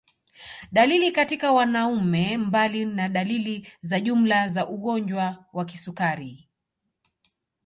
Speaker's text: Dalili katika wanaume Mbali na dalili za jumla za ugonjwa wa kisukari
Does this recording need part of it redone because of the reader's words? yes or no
no